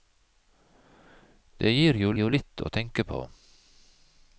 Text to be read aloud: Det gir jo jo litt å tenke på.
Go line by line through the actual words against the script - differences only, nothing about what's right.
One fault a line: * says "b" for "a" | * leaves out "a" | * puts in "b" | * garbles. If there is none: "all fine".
all fine